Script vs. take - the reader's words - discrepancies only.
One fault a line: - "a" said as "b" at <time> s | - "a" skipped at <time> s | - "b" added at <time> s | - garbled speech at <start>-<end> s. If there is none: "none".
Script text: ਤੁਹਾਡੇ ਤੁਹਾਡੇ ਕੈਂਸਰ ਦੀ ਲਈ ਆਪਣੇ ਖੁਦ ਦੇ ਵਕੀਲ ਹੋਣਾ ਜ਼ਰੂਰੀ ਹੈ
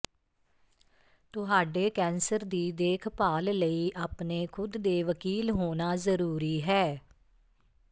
- "ਤੁਹਾਡੇ" skipped at 1.9 s
- "ਦੇਖਭਾਲ" added at 2.7 s